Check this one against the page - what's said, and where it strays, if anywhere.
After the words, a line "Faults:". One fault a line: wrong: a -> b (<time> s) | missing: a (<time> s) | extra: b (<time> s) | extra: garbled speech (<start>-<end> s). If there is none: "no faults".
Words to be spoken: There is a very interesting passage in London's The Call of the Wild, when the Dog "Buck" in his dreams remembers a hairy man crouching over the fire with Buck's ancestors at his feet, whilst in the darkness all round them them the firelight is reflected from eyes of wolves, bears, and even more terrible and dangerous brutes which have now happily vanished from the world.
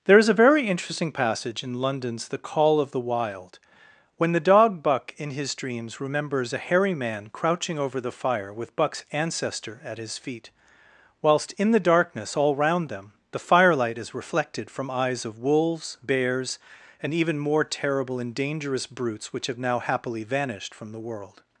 There is a very interesting passage in London's The Call of the Wild, when the Dog "Buck" in his dreams remembers a hairy man crouching over the fire with Buck's ancestor at his feet, whilst in the darkness all round them the firelight is reflected from eyes of wolves, bears, and even more terrible and dangerous brutes which have now happily vanished from the world.
Faults:
wrong: ancestors -> ancestor (9.1 s)
missing: them (13.1 s)